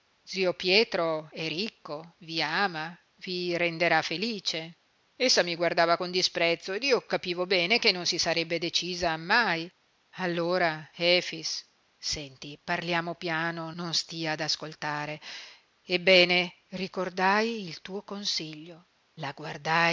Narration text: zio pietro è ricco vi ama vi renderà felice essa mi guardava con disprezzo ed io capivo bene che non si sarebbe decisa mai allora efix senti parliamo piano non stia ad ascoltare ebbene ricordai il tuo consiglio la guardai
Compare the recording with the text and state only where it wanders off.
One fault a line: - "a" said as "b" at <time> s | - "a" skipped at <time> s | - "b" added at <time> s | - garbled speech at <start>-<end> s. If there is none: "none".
none